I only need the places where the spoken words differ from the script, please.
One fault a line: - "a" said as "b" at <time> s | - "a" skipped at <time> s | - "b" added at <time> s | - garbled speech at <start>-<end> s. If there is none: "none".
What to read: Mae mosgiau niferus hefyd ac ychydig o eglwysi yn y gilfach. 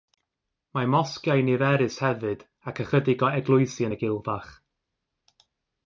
none